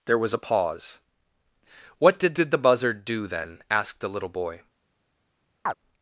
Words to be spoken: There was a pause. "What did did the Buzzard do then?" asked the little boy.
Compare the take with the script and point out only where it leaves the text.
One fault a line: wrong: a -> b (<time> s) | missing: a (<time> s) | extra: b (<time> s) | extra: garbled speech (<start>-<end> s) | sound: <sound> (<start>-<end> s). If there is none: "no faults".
sound: chirp (5.7-5.7 s)